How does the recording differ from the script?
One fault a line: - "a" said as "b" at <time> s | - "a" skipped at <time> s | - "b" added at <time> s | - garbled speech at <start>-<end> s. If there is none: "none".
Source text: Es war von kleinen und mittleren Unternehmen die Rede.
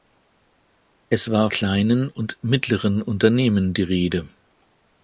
- "von" skipped at 1.5 s